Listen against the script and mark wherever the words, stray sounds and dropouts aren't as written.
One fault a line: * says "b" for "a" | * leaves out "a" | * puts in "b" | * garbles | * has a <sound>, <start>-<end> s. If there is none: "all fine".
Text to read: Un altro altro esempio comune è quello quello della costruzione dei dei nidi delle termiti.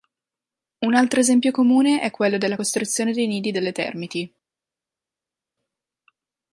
* leaves out "altro"
* leaves out "quello"
* leaves out "dei"